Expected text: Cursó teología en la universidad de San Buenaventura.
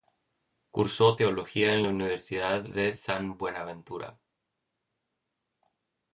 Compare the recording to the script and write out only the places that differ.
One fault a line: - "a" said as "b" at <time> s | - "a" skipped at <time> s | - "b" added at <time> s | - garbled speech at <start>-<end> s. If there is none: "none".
none